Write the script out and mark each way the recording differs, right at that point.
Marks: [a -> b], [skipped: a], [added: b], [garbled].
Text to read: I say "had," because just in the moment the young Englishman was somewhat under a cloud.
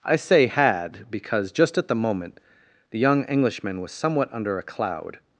I say "had," because just [in -> at] the moment the young Englishman was somewhat under a cloud.